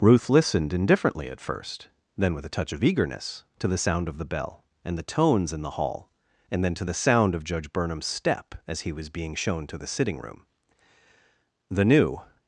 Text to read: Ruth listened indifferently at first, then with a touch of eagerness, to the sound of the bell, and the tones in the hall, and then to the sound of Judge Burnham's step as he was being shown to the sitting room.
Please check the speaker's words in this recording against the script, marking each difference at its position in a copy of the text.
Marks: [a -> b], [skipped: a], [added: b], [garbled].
Ruth listened indifferently at first, then with a touch of eagerness, to the sound of the bell, and the tones in the hall, and then to the sound of Judge Burnham's step as he was being shown to the sitting room. [added: The new]